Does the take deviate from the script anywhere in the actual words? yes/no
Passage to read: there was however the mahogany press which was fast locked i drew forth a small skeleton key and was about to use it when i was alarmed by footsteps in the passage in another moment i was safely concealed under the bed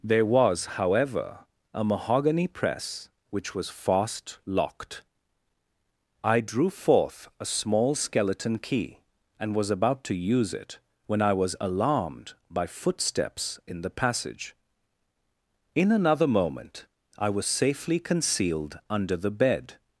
yes